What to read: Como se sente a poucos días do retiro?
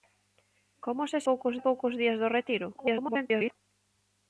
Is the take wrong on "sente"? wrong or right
wrong